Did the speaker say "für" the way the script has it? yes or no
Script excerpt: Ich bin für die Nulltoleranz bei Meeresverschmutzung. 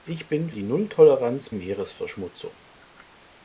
no